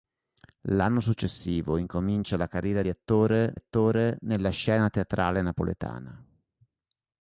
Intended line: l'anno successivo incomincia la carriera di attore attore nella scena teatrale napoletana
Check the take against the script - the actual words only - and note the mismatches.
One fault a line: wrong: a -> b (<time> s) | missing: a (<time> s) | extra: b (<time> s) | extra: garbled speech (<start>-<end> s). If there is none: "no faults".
no faults